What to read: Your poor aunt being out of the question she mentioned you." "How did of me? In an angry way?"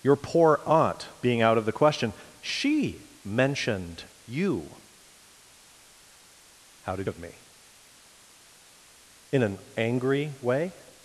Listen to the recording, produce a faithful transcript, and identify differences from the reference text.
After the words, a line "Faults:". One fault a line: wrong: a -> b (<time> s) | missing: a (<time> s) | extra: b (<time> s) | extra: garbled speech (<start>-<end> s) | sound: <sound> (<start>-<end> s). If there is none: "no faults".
Your poor aunt being out of the question she mentioned you." "How did of me? In an angry way?"
Faults:
no faults